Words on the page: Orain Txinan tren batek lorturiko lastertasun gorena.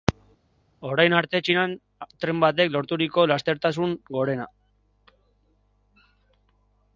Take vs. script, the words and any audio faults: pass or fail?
fail